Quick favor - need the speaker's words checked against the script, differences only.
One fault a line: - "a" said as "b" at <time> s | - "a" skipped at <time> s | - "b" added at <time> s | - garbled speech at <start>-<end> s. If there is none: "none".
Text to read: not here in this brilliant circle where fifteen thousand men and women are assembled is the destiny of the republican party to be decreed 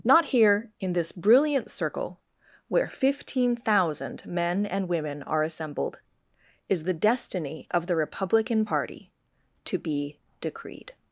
none